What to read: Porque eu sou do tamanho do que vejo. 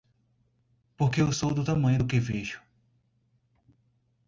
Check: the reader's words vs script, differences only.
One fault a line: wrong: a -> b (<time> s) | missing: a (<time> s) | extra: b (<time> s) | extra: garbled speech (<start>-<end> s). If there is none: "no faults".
no faults